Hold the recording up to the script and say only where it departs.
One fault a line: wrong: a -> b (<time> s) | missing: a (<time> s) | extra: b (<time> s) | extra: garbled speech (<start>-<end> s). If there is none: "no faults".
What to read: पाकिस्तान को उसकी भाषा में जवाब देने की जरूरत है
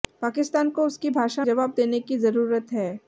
missing: में (1.4 s)